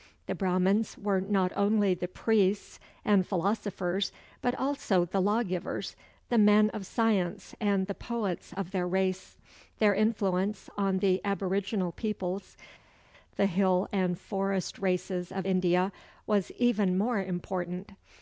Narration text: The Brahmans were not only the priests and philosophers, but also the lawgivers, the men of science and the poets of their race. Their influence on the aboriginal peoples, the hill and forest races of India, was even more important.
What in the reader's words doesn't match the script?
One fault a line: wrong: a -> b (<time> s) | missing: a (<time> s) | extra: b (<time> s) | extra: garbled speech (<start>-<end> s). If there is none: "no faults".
no faults